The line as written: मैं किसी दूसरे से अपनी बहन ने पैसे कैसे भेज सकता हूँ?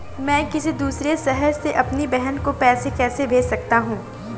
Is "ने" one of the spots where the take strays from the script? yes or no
yes